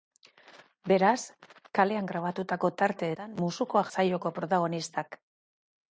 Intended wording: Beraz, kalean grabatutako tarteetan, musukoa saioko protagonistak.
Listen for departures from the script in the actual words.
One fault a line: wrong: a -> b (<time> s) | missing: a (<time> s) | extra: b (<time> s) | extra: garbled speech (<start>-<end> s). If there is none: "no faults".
no faults